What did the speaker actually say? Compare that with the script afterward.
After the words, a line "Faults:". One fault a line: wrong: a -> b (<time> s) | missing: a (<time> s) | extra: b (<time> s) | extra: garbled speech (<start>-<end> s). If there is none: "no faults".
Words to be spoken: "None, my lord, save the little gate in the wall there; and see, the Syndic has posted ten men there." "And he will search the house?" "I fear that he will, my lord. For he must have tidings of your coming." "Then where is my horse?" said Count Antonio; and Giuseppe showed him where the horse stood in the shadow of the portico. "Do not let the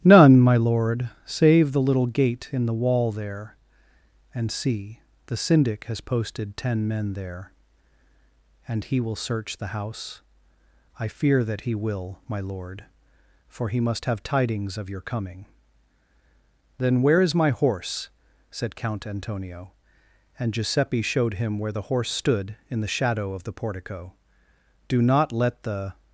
"None, my lord, save the little gate in the wall there; and see, the Syndic has posted ten men there." "And he will search the house?" "I fear that he will, my lord. For he must have tidings of your coming." "Then where is my horse?" said Count Antonio; and Giuseppe showed him where the horse stood in the shadow of the portico. "Do not let the
Faults:
no faults